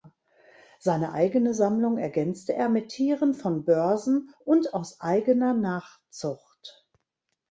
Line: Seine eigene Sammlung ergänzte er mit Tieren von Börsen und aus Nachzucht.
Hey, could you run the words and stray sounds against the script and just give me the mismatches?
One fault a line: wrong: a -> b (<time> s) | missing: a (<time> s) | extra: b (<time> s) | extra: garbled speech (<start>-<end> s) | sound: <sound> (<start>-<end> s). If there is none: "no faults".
extra: eigener (5.0 s)